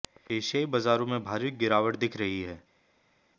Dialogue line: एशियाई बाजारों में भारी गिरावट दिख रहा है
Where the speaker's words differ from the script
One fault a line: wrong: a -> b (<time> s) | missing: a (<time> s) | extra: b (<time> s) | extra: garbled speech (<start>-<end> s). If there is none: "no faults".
wrong: रहा -> रही (2.2 s)